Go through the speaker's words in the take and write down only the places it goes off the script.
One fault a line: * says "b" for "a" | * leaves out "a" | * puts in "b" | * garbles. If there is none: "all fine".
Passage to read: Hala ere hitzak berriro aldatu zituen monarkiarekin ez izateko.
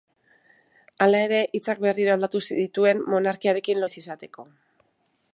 all fine